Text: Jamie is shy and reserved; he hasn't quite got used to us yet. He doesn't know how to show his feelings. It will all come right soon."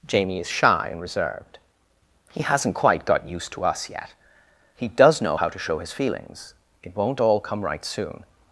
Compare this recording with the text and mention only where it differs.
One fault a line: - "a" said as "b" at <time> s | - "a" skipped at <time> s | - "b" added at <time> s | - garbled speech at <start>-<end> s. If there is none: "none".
- "doesn't" said as "does" at 4.9 s
- "will" said as "won't" at 6.9 s